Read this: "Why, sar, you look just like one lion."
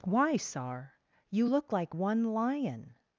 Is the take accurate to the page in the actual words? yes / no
no